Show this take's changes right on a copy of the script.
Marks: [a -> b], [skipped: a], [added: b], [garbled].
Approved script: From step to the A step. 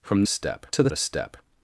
From step to the A step.